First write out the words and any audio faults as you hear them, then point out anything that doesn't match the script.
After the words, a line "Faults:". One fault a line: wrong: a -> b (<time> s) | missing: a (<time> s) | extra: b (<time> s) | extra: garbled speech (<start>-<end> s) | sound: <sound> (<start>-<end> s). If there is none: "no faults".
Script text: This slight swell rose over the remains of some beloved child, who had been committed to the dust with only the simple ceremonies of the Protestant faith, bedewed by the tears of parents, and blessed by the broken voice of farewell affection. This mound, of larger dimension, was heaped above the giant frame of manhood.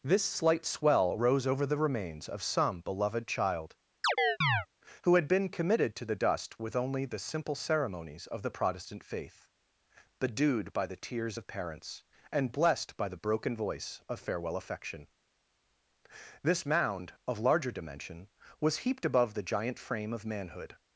This slight swell rose over the remains of some beloved child, who had been committed to the dust with only the simple ceremonies of the Protestant faith, bedewed by the tears of parents, and blessed by the broken voice of farewell affection. This mound, of larger dimension, was heaped above the giant frame of manhood.
Faults:
sound: chirp (4.0-4.7 s)